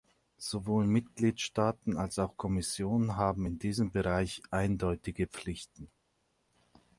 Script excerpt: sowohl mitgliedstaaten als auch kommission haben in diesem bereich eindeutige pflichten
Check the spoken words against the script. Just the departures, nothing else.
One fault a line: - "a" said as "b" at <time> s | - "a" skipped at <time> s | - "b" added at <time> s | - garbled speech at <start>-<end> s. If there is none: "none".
none